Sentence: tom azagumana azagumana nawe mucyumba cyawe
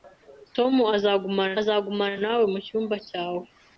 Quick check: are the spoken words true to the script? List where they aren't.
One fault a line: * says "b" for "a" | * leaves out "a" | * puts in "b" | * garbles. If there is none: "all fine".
all fine